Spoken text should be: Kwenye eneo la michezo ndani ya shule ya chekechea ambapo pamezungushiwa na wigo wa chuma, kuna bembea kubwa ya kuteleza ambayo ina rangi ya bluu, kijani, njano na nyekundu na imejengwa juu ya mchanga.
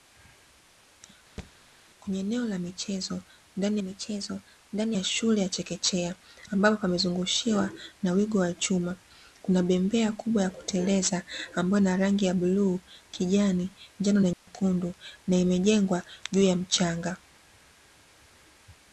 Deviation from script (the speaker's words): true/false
true